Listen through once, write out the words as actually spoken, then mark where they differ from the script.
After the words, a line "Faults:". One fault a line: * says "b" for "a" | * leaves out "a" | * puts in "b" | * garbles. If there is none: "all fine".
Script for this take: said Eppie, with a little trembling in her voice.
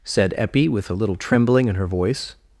said Eppie, with a little trembling in her voice.
Faults:
all fine